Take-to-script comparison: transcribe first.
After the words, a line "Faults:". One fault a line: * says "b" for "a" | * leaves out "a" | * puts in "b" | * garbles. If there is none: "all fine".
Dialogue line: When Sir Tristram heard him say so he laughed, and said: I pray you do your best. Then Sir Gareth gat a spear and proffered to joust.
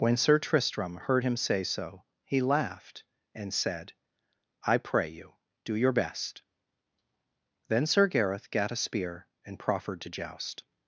When Sir Tristram heard him say so he laughed, and said: I pray you do your best. Then Sir Gareth gat a spear and proffered to joust.
Faults:
all fine